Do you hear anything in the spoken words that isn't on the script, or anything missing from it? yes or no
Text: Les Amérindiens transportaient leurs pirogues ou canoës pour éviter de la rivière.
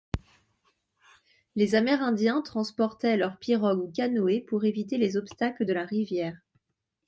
yes